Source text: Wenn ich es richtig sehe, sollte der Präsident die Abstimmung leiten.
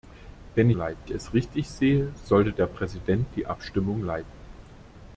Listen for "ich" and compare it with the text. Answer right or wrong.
wrong